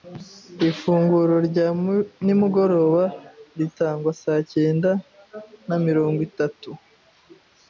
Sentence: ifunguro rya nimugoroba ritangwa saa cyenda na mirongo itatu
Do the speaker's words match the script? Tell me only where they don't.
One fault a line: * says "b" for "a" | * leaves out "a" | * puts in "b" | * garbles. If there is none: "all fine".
all fine